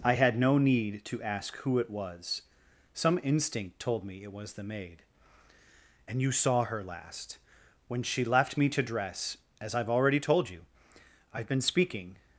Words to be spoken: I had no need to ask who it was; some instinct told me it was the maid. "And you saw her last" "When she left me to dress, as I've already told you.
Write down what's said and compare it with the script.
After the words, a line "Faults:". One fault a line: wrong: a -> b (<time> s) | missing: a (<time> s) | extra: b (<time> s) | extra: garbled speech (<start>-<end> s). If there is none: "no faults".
I had no need to ask who it was; some instinct told me it was the maid. "And you saw her last" "When she left me to dress, as I've already told you. I've been speaking
Faults:
extra: I've been speaking (11.3 s)